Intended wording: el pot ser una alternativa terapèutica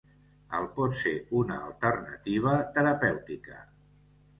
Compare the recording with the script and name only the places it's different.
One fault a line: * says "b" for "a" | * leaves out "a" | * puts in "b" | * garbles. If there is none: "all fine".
all fine